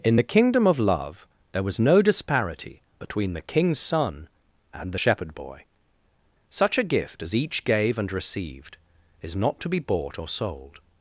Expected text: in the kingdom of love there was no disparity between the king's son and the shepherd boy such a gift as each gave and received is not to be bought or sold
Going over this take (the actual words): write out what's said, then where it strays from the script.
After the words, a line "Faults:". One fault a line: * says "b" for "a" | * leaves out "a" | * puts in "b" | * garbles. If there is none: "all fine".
in the kingdom of love there was no disparity between the king's son and the shepherd boy such a gift as each gave and received is not to be bought or sold
Faults:
all fine